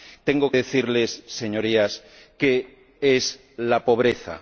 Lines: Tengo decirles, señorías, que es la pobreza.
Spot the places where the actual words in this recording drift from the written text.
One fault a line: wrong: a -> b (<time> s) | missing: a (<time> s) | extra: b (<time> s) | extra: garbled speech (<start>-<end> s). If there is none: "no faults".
no faults